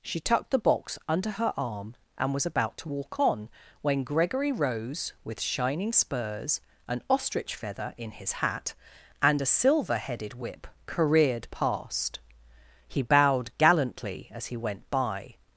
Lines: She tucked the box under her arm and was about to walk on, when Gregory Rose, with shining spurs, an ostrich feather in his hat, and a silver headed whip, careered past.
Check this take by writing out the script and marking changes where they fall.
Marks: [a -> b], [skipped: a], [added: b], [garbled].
She tucked the box under her arm and was about to walk on, when Gregory Rose, with shining spurs, an ostrich feather in his hat, and a silver headed whip, careered past. [added: He bowed gallantly as he went by]